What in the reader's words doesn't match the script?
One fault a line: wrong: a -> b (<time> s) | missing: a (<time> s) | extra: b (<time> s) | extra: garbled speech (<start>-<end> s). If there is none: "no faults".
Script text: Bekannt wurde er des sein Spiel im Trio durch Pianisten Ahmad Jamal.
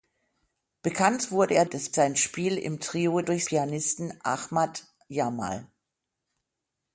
no faults